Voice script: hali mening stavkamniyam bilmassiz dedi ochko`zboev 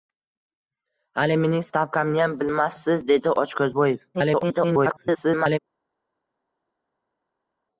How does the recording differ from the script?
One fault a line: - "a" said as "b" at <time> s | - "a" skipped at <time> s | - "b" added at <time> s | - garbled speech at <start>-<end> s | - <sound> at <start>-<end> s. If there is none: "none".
- garbled speech at 4.1-5.6 s